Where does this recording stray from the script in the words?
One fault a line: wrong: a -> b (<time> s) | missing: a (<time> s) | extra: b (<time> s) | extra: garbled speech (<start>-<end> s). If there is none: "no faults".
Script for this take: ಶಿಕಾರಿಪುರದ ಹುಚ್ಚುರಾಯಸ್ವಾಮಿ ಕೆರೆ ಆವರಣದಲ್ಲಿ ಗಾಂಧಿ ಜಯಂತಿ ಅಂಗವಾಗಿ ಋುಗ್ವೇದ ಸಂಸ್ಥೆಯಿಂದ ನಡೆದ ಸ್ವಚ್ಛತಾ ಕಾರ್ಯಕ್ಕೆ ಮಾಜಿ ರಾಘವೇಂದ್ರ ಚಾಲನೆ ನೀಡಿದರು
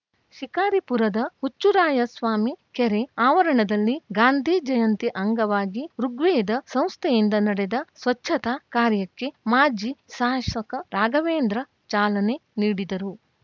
extra: ಶಾಸಕ (10.1 s)